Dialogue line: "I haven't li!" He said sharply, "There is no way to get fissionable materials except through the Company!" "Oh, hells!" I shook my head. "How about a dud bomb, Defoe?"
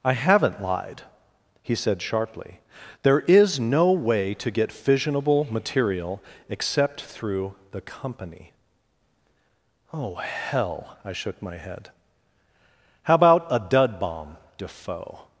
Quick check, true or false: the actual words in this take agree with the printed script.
false